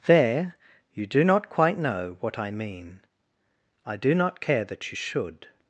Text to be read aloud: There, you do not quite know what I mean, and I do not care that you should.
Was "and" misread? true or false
true